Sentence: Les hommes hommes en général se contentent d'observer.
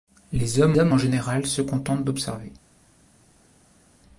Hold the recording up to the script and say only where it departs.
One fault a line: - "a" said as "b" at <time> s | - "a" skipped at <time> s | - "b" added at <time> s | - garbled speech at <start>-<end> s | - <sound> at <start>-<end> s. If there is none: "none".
none